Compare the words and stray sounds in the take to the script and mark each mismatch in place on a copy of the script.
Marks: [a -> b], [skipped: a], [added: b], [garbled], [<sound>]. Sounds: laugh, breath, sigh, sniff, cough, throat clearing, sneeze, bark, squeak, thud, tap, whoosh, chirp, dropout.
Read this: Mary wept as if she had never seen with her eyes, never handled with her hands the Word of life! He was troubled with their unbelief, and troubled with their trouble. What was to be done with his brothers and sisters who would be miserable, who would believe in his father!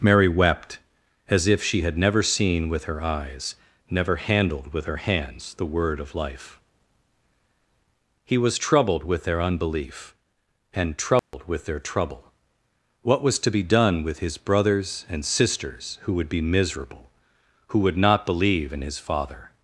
Mary wept as if she had never seen with her eyes, never handled with her hands the Word of life! He was troubled with their unbelief, and troubled [dropout] with their trouble. What was to be done with his brothers and sisters who would be miserable, who would [added: not] believe in his father!